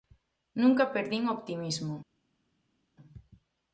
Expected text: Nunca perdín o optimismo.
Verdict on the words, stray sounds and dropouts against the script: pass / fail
pass